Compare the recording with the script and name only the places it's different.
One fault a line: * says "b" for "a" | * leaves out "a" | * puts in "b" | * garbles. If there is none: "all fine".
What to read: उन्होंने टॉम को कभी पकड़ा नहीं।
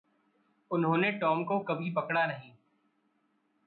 all fine